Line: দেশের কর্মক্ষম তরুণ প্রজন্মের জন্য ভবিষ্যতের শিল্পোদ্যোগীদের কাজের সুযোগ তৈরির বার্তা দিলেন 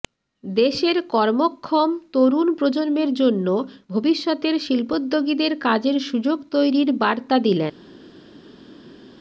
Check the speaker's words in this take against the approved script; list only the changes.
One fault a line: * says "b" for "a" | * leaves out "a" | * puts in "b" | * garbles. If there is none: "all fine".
all fine